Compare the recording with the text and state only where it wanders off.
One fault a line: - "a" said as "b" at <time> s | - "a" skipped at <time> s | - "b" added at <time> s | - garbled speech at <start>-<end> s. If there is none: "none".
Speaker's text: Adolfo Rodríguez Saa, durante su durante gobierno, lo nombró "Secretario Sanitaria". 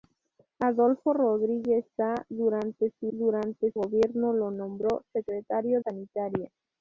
none